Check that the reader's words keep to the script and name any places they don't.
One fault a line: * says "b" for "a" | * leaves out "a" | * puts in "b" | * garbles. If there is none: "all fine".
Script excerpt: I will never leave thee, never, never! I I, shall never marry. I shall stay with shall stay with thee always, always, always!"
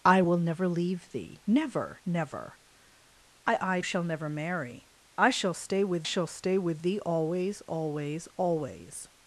all fine